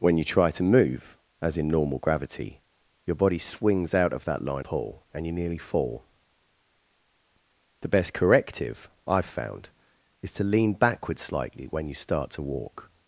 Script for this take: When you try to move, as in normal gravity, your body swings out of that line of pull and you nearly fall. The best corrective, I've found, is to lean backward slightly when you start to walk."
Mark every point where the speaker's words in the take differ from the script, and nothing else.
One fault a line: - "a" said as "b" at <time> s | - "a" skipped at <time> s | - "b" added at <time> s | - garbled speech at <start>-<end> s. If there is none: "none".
- "of" skipped at 4.7 s